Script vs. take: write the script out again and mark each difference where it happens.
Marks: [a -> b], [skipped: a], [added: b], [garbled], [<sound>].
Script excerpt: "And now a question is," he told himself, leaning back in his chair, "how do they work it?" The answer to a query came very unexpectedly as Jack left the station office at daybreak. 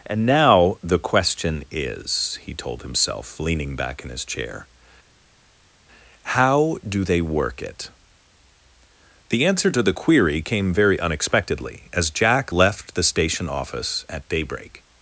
"And now [a -> the] question is," he told himself, leaning back in his chair, "how do they work it?" The answer to [a -> the] query came very unexpectedly as Jack left the station office at daybreak.